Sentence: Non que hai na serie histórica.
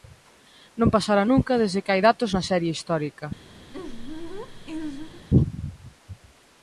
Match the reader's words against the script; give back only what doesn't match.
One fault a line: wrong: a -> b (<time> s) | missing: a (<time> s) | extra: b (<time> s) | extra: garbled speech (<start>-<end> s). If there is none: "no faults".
extra: pasara nunca desde (0.9 s)
extra: datos (2.1 s)